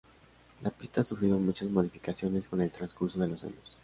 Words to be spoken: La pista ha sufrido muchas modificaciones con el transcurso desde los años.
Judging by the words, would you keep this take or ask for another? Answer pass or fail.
fail